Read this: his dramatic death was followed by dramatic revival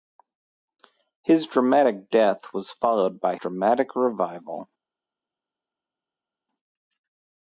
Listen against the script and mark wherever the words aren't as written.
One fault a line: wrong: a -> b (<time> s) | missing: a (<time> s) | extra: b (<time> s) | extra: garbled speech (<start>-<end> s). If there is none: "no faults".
no faults